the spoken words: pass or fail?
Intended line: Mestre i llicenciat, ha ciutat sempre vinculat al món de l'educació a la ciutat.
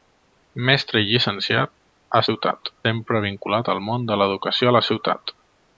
pass